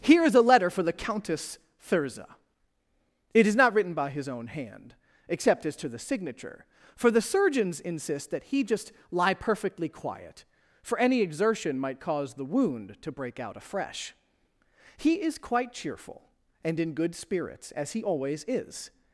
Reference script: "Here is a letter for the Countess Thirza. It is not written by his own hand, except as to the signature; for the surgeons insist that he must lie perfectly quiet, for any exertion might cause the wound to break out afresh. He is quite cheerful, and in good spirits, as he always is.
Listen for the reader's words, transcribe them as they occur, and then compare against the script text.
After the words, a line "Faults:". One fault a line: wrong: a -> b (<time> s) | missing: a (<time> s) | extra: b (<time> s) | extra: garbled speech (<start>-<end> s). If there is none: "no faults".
"Here is a letter for the Countess Thirza. It is not written by his own hand, except as to the signature; for the surgeons insist that he just lie perfectly quiet, for any exertion might cause the wound to break out afresh. He is quite cheerful, and in good spirits, as he always is.
Faults:
wrong: must -> just (8.6 s)